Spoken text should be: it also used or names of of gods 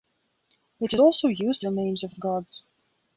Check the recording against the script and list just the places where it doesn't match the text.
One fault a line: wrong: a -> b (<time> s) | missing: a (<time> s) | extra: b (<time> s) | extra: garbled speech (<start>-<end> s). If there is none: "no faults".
no faults